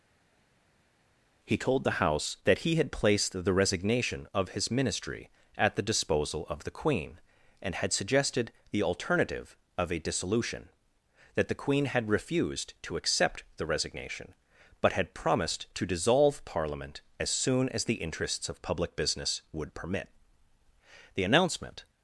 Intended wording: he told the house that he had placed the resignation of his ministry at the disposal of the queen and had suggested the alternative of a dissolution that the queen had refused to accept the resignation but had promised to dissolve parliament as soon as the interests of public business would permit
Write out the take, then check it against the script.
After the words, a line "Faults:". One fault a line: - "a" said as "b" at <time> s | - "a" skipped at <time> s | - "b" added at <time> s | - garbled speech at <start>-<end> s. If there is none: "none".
he told the house that he had placed the resignation of his ministry at the disposal of the queen and had suggested the alternative of a dissolution that the queen had refused to accept the resignation but had promised to dissolve parliament as soon as the interests of public business would permit the announcement
Faults:
- "the announcement" added at 21.1 s